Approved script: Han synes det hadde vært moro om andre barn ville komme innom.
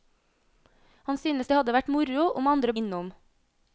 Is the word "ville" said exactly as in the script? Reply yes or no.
no